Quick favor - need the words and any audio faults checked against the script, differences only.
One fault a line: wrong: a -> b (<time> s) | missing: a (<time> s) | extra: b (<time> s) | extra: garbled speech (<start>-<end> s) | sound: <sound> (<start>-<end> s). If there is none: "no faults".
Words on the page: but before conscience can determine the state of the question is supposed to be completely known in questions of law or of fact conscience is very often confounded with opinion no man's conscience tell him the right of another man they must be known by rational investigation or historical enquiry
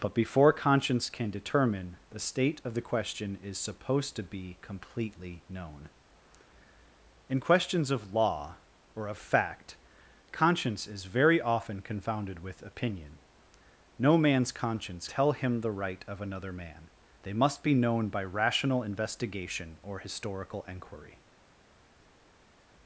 no faults